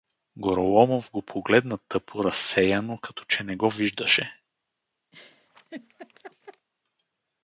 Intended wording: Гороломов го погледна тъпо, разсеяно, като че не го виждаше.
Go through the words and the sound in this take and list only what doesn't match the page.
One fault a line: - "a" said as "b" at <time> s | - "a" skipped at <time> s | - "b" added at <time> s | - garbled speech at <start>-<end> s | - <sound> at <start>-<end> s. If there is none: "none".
- laugh at 5.1-6.7 s